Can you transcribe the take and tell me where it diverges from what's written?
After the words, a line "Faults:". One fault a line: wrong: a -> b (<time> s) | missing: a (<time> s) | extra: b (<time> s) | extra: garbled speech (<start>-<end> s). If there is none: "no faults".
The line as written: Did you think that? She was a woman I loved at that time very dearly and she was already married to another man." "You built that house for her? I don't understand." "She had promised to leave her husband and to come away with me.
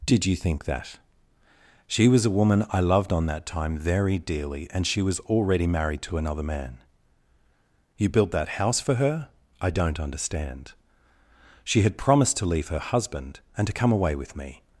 Did you think that? She was a woman I loved on that time very dearly and she was already married to another man." "You built that house for her? I don't understand." "She had promised to leave her husband and to come away with me.
Faults:
wrong: at -> on (3.1 s)